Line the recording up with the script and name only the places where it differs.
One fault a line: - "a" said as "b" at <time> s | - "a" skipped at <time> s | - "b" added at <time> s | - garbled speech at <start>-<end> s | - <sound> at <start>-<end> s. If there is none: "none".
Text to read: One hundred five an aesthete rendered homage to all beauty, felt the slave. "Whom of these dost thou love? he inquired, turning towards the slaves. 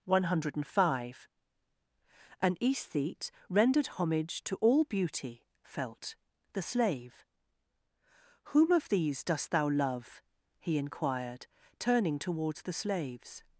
none